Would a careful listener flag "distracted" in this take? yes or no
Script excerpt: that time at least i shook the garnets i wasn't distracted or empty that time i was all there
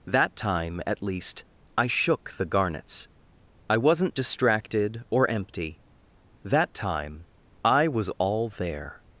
no